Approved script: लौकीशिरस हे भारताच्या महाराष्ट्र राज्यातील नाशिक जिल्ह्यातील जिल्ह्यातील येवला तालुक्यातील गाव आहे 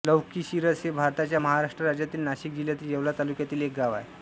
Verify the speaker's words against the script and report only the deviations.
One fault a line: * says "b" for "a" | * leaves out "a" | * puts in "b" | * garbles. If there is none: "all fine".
* leaves out "जिल्ह्यातील"
* puts in "एक"